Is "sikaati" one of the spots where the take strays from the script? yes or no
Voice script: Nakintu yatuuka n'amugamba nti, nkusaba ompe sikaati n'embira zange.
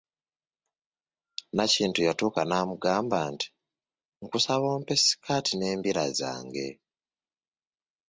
no